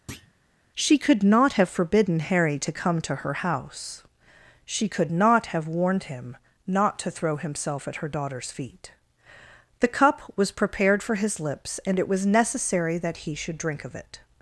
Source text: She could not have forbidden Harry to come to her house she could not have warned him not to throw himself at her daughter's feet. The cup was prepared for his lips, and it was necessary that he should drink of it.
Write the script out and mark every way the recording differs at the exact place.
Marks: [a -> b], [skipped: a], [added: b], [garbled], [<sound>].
[thud] She could not have forbidden Harry to come to her house she could not have warned him not to throw himself at her daughter's feet. The cup was prepared for his lips, and it was necessary that he should drink of it.